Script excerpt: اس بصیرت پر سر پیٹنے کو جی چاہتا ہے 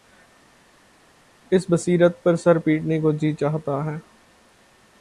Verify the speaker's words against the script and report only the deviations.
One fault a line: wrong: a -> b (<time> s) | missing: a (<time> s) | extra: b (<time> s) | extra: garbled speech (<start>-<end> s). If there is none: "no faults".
no faults